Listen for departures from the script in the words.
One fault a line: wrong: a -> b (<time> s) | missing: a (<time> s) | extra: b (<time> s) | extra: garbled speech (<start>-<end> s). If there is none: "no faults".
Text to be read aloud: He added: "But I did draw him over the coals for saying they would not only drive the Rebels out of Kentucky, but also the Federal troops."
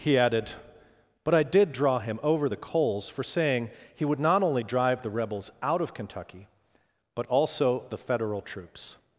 wrong: they -> he (3.9 s)